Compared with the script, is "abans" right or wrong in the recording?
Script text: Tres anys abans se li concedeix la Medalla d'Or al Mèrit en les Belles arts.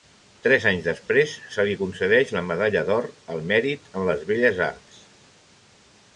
wrong